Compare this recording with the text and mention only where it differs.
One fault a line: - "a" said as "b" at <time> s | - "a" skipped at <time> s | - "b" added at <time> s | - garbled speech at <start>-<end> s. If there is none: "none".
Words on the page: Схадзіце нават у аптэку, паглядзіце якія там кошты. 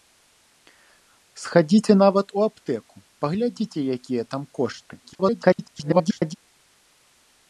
- garbled speech at 5.0-6.3 s